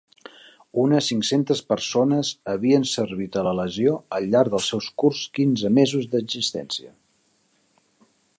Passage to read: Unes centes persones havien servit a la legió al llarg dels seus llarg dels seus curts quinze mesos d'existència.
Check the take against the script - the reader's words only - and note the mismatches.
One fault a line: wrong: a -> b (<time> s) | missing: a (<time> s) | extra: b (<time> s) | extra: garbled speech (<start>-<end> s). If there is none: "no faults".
extra: cinc (1.1 s)
missing: llarg dels seus (4.9 s)